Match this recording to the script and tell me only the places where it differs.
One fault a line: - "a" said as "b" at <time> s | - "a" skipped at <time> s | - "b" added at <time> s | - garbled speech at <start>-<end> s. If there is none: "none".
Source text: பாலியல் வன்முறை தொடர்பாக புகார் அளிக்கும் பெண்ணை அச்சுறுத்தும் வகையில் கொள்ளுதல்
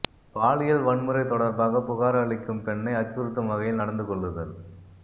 - "நடந்து" added at 3.8 s